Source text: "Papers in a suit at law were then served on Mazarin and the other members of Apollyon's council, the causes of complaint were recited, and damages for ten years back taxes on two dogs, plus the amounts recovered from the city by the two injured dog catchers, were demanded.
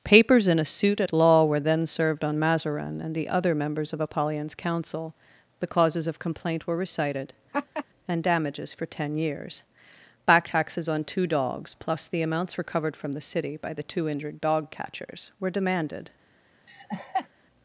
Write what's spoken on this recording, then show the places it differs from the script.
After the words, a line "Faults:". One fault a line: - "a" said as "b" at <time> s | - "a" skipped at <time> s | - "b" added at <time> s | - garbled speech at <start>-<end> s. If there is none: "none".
"Papers in a suit at law were then served on Mazarin and the other members of Apollyon's council, the causes of complaint were recited, and damages for ten years back taxes on two dogs, plus the amounts recovered from the city by the two injured dog catchers, were demanded.
Faults:
none